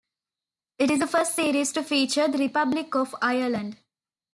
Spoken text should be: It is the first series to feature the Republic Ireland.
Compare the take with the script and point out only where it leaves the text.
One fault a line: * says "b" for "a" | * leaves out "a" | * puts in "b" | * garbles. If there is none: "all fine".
* puts in "of"